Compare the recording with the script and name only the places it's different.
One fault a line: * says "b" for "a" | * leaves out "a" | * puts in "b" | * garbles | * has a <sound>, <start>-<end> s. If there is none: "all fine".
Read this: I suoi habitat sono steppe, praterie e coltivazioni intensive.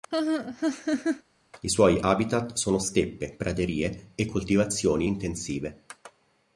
* has a laugh, 0.1-1.2 s